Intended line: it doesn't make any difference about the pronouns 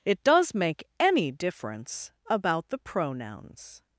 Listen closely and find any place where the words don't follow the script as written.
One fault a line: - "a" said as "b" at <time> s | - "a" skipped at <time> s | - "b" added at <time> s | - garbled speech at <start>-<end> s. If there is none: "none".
- "doesn't" said as "does" at 0.2 s